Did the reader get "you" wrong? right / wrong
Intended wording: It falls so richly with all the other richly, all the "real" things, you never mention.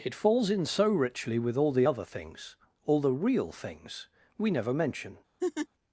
wrong